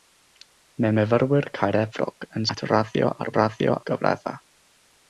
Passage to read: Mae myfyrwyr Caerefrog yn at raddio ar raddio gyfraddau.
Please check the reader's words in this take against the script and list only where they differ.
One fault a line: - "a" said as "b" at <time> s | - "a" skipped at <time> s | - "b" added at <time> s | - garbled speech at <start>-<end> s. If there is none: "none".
none